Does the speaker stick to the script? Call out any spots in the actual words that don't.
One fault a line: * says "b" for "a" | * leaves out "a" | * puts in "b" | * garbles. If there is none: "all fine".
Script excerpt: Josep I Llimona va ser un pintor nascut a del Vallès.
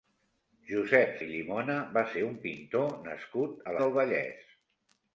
all fine